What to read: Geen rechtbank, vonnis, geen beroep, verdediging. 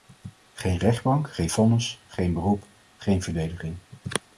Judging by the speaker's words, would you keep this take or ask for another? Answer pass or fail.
fail